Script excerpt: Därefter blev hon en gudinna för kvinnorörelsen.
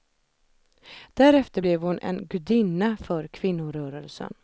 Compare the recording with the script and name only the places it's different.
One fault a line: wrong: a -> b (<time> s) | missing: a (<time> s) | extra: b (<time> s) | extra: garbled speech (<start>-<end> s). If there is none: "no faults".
no faults